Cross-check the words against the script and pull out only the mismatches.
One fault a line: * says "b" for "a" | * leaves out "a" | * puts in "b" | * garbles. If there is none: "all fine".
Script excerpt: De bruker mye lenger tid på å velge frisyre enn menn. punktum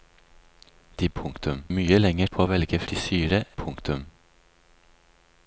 * says "punktum" for "bruker"
* leaves out "tid"
* leaves out "enn menn"